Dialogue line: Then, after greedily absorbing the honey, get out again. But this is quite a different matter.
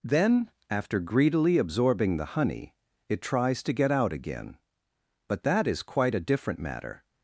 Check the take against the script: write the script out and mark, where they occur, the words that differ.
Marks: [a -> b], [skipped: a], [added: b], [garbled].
Then, after greedily absorbing the honey, [added: it tries to] get out again. But [this -> that] is quite a different matter.